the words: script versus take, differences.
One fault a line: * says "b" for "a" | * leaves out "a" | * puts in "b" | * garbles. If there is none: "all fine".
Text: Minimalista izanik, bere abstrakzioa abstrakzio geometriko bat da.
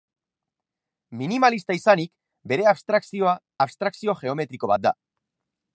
all fine